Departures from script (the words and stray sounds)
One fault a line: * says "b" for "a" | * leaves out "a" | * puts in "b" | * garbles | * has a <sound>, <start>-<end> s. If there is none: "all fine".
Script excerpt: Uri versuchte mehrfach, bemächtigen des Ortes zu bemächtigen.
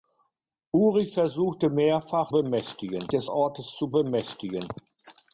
all fine